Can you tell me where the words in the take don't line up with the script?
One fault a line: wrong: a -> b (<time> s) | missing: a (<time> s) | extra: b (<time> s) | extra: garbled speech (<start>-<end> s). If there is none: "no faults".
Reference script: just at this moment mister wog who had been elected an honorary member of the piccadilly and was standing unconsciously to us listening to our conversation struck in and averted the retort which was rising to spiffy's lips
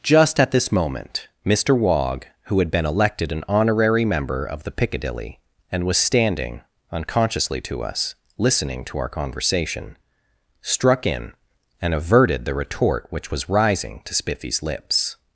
no faults